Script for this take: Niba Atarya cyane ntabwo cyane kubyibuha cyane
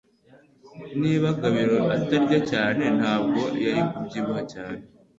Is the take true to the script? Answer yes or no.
no